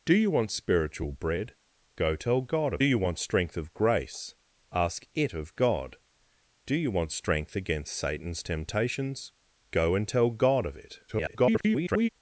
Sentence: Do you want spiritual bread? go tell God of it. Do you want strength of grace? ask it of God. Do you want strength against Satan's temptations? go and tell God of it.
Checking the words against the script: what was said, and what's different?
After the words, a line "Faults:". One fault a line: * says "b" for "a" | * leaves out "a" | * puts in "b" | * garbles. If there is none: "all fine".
Do you want spiritual bread? go tell God of you want strength of grace? ask it of God. Do you want strength against Satan's temptations? go and tell God of it. [garbled]
Faults:
* leaves out "it Do"
* garbles